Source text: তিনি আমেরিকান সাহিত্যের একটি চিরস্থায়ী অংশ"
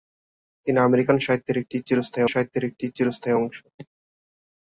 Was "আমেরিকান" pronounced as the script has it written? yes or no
yes